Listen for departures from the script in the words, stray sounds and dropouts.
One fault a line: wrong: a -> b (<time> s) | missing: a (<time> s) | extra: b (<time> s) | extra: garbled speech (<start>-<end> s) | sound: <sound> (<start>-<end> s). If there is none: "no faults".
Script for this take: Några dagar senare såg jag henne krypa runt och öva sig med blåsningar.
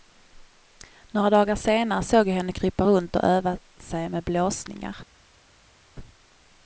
no faults